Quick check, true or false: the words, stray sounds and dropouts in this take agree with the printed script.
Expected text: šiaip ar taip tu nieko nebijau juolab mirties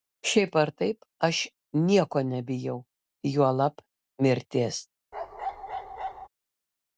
false